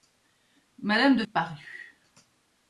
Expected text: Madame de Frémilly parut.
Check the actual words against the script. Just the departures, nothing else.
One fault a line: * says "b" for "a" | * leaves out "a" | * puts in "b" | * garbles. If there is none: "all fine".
* leaves out "Frémilly"